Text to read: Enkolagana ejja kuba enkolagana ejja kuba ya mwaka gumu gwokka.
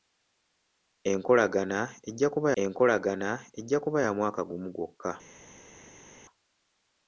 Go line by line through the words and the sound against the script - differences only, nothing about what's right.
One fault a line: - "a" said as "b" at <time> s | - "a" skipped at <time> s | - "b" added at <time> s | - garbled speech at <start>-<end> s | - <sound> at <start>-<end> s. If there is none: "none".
none